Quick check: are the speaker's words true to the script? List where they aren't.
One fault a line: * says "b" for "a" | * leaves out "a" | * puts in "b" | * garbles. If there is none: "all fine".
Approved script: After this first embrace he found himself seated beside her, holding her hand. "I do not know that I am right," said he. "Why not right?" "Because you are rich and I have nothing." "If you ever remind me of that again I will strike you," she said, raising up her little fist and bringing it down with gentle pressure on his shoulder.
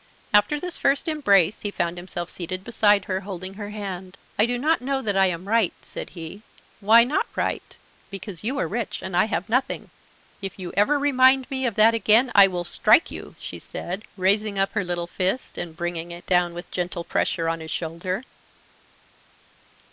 all fine